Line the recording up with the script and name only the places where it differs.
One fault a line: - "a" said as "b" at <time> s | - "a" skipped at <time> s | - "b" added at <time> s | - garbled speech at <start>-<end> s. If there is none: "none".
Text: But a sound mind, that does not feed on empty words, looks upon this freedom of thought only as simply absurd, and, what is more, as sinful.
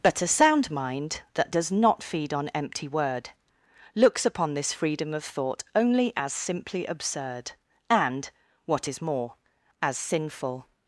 - "words" said as "word" at 2.9 s